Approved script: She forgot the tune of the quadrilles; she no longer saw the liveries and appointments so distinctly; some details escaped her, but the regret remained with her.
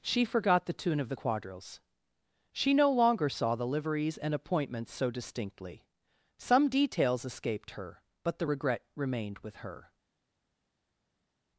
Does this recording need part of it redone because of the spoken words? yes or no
no